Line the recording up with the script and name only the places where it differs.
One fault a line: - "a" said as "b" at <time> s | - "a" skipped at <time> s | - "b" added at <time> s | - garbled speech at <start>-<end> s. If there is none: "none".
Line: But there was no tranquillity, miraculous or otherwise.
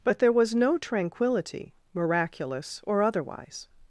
none